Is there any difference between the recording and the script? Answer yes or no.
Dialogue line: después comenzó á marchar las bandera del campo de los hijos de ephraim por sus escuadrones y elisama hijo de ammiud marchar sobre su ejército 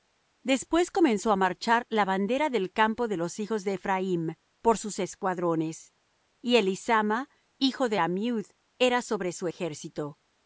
yes